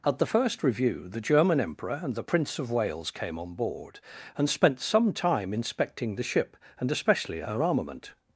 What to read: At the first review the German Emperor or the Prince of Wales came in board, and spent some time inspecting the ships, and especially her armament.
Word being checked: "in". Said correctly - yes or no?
no